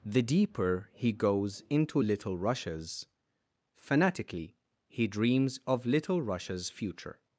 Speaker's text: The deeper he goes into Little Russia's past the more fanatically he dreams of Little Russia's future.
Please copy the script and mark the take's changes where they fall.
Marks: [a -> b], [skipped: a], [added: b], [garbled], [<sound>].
The deeper he goes into Little Russia's [skipped: past the more] fanatically he dreams of Little Russia's future.